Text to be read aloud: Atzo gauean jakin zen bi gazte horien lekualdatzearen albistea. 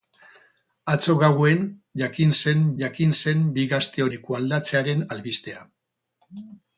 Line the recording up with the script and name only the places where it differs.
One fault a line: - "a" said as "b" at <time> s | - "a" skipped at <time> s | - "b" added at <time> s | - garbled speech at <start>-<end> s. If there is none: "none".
- "jakin zen" added at 2.8 s
- "horien" skipped at 4.1 s